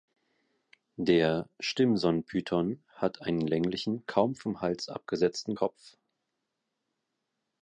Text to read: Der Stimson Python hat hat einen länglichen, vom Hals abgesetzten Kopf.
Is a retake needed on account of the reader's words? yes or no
yes